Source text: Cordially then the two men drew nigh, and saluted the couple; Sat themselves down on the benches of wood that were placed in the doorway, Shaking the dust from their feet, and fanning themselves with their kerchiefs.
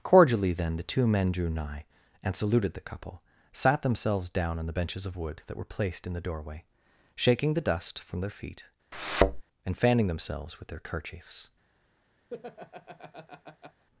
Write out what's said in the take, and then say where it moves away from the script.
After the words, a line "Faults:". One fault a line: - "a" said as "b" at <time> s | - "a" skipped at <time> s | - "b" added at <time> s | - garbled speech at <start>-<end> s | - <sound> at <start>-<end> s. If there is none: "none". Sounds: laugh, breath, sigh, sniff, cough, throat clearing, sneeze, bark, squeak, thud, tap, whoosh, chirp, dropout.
Cordially then the two men drew nigh, and saluted the couple; Sat themselves down on the benches of wood that were placed in the doorway, Shaking the dust from their feet, and fanning themselves with their kerchiefs.
Faults:
- thud at 8.9-9.4 s
- laugh at 12.3-13.8 s